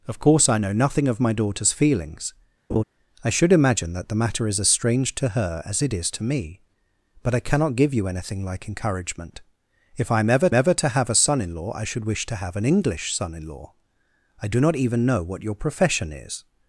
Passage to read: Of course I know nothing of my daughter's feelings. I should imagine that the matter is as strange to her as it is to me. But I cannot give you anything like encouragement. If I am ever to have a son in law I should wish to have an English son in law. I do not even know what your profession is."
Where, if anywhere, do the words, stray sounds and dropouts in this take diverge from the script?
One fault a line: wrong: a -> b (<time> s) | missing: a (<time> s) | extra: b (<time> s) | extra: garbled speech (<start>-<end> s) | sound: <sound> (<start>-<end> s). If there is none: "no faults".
sound: laugh (2.7-2.8 s)
extra: ever (10.5 s)